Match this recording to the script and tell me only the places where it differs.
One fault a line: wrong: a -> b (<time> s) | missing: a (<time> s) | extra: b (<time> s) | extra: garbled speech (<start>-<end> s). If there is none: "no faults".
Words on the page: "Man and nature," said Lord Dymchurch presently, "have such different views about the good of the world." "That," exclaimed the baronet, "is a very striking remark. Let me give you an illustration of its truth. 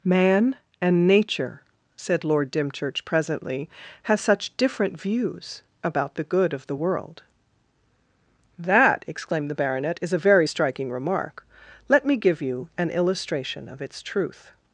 wrong: have -> has (4.0 s)